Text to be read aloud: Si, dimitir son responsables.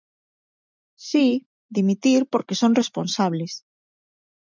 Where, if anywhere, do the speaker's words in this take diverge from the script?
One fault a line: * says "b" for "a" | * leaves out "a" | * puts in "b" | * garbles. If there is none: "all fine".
* puts in "porque"